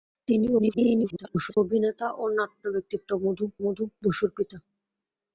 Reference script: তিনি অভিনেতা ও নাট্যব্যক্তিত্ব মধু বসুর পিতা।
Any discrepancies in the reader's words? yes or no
yes